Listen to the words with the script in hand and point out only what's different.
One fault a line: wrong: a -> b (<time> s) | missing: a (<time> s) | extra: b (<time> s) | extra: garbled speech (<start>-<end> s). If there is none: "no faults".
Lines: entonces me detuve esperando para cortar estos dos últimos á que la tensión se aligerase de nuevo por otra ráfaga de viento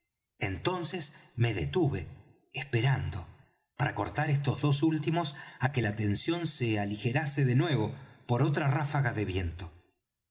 no faults